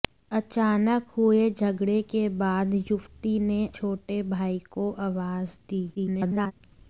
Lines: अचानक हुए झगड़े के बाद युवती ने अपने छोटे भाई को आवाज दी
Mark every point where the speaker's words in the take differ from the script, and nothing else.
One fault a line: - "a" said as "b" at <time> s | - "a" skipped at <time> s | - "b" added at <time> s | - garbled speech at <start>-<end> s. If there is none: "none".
- "अपने" skipped at 3.6 s
- garbled speech at 5.9-6.5 s